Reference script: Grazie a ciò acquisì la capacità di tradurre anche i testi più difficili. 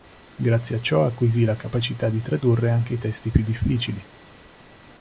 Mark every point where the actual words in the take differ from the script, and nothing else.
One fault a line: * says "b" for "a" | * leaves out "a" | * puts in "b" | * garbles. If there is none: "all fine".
all fine